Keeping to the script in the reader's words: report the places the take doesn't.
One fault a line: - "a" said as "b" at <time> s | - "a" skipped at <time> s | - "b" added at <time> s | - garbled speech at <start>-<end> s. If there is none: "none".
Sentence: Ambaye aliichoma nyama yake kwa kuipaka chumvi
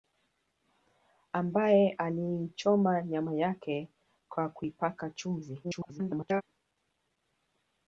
- garbled speech at 5.6-6.4 s